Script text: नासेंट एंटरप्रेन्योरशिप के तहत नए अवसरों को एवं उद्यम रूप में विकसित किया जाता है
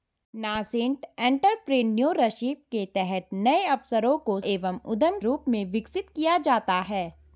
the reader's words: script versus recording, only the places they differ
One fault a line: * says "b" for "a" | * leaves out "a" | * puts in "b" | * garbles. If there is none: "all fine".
all fine